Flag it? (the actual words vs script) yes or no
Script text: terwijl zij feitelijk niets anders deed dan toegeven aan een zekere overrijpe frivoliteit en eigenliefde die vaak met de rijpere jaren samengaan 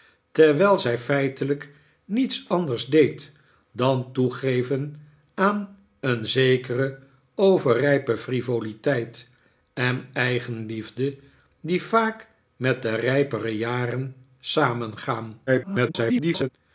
yes